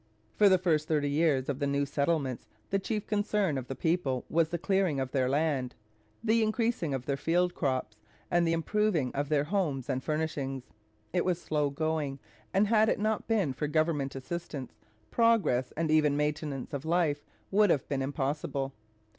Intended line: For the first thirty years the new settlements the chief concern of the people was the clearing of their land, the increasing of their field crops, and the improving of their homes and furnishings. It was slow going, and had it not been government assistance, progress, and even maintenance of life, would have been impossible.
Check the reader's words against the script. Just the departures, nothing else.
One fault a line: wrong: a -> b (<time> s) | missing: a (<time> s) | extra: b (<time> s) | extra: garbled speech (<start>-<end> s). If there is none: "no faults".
extra: of (1.5 s)
extra: for (13.5 s)